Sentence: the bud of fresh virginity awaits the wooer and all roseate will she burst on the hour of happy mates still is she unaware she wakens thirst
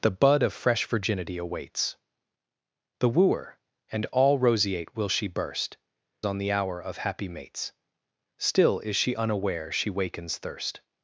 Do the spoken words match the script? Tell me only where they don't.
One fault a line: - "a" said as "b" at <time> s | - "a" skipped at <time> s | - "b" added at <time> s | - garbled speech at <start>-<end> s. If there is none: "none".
none